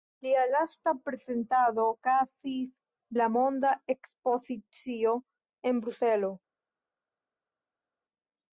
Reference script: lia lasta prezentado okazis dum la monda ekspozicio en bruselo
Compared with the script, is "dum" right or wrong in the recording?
wrong